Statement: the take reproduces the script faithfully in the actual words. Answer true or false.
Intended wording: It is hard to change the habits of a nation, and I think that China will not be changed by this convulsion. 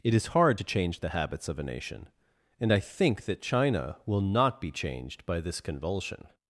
true